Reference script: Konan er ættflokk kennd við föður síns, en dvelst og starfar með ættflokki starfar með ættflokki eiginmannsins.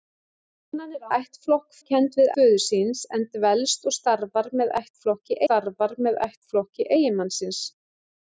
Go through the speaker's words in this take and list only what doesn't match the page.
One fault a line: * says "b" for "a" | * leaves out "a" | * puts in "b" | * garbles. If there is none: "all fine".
all fine